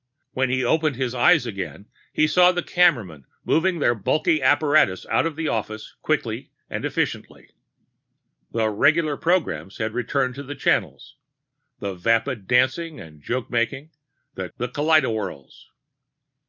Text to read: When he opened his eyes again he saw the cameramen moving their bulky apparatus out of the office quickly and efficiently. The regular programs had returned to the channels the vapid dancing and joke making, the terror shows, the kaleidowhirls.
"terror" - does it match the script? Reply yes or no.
no